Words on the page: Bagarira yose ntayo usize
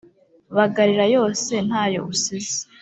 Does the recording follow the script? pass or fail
pass